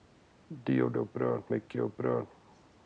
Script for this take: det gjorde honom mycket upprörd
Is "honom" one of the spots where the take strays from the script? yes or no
yes